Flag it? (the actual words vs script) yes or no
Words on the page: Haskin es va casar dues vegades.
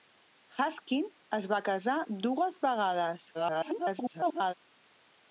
yes